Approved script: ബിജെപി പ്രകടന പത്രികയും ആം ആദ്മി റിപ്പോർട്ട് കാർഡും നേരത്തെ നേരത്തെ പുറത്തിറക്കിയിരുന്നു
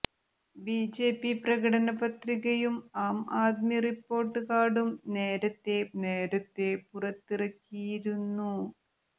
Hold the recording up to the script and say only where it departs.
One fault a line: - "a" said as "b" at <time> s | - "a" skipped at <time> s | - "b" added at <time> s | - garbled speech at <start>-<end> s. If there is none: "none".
none